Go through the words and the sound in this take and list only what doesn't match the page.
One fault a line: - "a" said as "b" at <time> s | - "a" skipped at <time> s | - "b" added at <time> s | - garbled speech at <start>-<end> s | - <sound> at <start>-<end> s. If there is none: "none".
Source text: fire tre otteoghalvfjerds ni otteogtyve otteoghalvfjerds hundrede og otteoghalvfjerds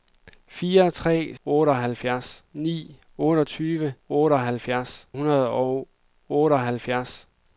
none